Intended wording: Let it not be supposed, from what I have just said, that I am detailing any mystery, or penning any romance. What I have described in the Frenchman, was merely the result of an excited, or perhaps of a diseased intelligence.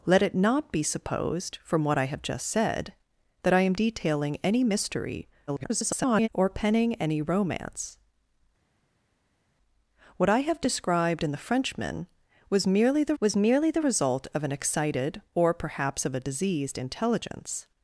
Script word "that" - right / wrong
right